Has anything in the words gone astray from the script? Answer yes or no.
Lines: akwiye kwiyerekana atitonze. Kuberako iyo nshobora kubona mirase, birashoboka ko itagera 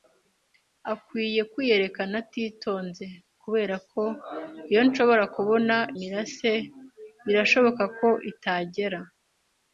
no